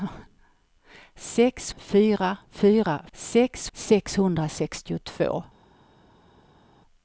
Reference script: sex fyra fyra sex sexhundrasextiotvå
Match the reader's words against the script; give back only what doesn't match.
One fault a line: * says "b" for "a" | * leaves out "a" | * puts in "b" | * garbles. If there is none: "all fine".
all fine